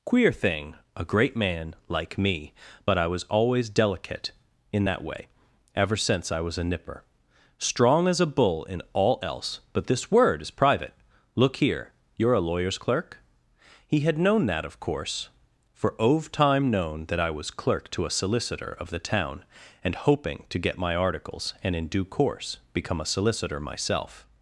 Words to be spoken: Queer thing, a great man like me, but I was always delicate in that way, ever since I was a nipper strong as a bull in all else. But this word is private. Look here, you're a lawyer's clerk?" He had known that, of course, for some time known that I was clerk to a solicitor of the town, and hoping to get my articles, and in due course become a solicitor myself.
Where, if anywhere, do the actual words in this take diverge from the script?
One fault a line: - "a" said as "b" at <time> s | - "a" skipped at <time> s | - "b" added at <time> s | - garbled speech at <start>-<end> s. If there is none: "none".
- "some" said as "ove" at 16.0 s